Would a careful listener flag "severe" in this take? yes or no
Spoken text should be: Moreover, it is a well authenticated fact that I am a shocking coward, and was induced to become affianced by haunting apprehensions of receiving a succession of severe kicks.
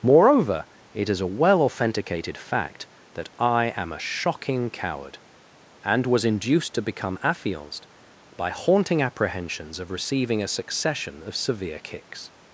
no